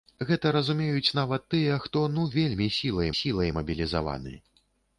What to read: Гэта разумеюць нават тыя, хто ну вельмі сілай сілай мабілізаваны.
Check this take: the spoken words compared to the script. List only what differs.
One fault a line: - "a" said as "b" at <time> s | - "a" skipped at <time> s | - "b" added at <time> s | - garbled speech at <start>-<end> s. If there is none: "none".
none